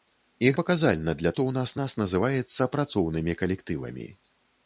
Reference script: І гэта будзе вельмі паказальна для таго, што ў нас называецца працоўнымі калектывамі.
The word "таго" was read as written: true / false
false